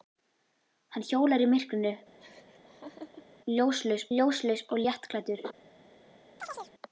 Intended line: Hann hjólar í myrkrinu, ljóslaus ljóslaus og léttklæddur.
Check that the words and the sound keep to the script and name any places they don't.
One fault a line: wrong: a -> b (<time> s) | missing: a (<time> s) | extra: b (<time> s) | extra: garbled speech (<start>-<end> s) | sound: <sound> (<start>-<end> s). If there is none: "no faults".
sound: laugh (2.2-3.4 s)
sound: chirp (6.4-6.7 s)